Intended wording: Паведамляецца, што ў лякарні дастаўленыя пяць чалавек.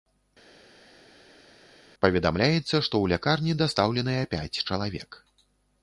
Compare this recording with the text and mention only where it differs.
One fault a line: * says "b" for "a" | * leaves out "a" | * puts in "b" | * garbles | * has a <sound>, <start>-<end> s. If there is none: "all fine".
all fine